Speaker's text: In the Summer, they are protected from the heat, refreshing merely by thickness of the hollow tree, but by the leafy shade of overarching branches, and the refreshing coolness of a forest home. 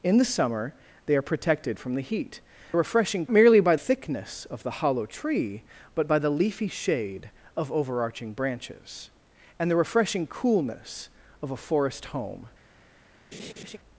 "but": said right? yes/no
yes